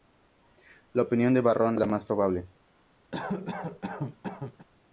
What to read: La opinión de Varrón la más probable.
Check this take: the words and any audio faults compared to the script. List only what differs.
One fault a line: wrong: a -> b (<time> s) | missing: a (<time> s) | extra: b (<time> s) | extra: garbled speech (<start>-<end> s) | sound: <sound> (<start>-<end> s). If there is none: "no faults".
sound: cough (3.1-4.7 s)